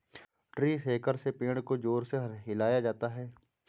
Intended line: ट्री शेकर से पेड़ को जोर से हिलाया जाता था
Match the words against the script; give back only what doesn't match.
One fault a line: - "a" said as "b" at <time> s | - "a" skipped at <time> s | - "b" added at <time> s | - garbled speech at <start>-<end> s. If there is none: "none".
- "था" said as "है" at 3.1 s